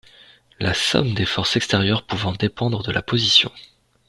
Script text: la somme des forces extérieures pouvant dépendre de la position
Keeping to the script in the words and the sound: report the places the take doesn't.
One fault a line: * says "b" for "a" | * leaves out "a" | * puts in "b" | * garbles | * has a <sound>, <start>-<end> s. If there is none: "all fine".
all fine